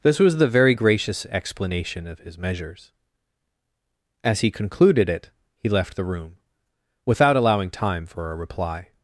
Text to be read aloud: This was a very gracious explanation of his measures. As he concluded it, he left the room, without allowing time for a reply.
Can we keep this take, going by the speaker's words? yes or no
no